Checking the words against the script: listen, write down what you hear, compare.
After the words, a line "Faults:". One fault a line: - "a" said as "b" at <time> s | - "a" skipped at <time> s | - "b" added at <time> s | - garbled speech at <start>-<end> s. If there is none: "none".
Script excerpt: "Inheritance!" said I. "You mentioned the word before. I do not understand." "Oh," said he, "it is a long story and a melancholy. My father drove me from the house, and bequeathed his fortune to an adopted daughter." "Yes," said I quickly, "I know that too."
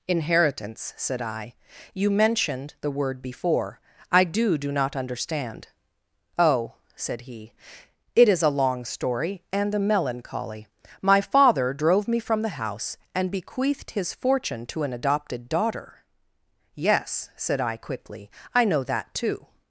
"Inheritance!" said I. "You mentioned the word before. I do do not understand." "Oh," said he, "it is a long story and a melancholy. My father drove me from the house, and bequeathed his fortune to an adopted daughter." "Yes," said I quickly, "I know that too."
Faults:
- "do" added at 4.6 s